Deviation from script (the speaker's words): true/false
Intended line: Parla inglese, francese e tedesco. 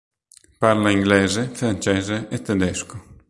false